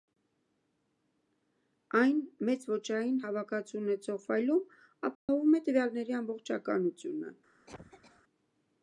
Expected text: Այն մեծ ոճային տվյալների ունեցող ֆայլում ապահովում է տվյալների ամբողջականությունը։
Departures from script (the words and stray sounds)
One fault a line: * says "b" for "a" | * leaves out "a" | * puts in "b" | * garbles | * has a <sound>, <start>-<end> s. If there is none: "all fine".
* says "հավաքածու" for "տվյալների"
* has a dropout, 5.1-5.3 s
* has a cough, 7.7-8.2 s